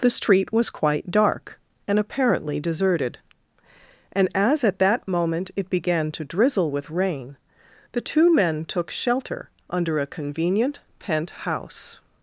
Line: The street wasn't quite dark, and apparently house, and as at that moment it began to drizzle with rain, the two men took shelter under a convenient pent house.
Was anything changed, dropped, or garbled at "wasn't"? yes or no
yes